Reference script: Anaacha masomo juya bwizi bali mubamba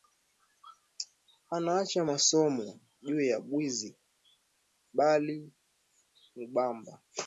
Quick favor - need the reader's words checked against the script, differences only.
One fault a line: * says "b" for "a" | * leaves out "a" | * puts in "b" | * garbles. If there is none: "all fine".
all fine